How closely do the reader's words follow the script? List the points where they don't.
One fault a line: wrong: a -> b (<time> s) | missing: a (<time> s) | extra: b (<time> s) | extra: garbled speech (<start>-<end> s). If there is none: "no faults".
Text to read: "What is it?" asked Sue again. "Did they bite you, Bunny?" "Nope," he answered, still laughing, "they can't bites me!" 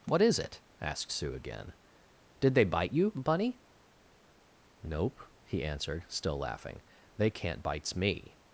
no faults